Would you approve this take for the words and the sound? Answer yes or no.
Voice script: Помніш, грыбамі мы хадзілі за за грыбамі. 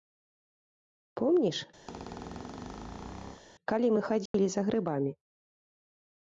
no